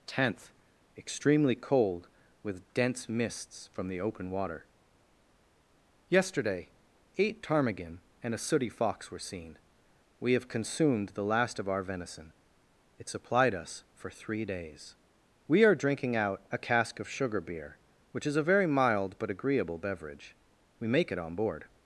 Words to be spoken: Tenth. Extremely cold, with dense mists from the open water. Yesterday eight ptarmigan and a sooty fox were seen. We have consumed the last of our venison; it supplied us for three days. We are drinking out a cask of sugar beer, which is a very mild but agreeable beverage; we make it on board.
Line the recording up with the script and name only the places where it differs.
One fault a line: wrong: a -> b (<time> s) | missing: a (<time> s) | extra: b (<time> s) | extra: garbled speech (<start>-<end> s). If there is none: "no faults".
no faults